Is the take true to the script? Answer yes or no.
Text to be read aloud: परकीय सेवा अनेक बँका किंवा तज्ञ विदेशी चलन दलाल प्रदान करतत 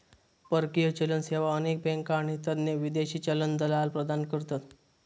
no